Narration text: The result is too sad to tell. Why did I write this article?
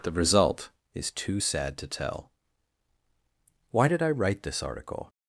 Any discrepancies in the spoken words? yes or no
no